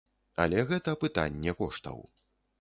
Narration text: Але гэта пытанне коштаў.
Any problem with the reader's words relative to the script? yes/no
no